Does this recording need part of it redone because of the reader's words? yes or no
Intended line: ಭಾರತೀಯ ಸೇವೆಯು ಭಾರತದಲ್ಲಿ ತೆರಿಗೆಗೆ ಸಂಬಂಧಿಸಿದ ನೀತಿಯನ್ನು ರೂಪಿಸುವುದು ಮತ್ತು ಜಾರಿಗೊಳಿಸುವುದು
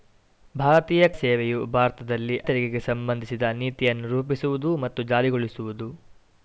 no